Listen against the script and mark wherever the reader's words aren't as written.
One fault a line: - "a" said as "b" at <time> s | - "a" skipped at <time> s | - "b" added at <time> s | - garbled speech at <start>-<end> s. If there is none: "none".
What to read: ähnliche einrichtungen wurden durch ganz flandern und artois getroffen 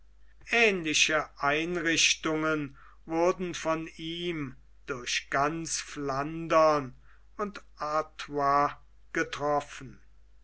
- "von ihm" added at 3.5 s